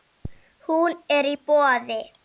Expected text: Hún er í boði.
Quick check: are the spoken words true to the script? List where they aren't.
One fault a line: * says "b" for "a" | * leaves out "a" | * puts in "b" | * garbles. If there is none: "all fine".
all fine